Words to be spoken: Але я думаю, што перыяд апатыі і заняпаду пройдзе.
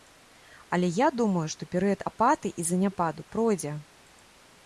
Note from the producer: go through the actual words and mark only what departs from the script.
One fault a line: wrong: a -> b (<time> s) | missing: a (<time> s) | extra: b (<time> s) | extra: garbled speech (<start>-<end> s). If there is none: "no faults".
no faults